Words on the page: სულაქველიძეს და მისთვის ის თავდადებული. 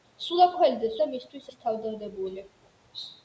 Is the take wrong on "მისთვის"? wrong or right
right